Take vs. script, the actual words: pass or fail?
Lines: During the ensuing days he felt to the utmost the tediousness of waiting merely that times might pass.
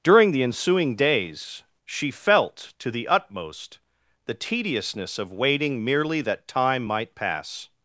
fail